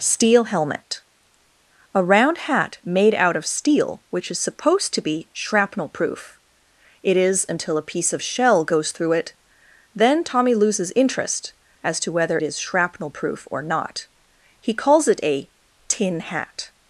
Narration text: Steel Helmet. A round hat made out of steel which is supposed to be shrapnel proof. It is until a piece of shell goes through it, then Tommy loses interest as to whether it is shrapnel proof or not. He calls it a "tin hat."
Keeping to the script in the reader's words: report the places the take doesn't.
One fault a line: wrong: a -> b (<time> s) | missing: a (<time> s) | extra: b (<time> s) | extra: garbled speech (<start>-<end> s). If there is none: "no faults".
missing: it (12.4 s)